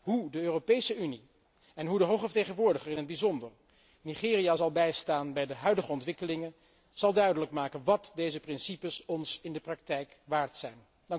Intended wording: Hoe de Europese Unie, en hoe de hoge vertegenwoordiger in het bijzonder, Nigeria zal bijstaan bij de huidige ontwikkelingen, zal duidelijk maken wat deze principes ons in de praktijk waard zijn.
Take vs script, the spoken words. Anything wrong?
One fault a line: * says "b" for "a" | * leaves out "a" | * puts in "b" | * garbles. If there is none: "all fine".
all fine